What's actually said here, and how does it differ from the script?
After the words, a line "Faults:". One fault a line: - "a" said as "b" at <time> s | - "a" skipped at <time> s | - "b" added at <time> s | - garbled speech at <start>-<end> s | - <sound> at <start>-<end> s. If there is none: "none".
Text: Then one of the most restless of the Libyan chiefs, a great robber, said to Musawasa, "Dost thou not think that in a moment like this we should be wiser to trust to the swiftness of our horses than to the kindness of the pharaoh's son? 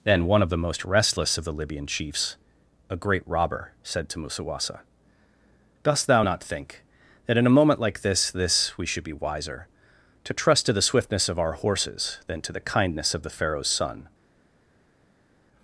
Then one of the most restless of the Libyan chiefs, a great robber, said to Musawasa, "Dost thou not think that in a moment like this this we should be wiser to trust to the swiftness of our horses than to the kindness of the pharaoh's son?
Faults:
- "this" added at 8.3 s